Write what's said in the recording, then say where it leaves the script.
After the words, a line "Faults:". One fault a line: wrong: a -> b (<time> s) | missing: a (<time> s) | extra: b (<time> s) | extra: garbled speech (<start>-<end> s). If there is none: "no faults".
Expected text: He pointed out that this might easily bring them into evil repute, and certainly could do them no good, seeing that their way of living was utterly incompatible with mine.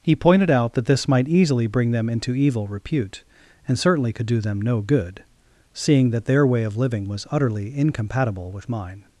He pointed out that this might easily bring them into evil repute, and certainly could do them no good, seeing that their way of living was utterly incompatible with mine.
Faults:
no faults